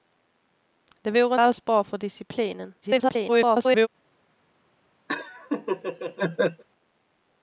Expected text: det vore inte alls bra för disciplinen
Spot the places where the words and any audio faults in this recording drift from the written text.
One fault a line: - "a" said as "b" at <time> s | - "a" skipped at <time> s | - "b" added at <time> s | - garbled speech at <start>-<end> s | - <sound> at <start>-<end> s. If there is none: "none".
- "inte" skipped at 1.4 s
- garbled speech at 2.8-3.9 s
- laugh at 5.1-6.6 s